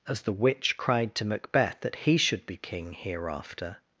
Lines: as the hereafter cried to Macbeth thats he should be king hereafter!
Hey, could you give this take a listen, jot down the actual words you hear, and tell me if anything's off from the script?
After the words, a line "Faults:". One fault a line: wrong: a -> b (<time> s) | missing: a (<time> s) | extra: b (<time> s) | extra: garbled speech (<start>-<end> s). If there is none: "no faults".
as the witch cried to Macbeth that he should be king hereafter!
Faults:
wrong: hereafter -> witch (0.3 s)
wrong: thats -> that (1.8 s)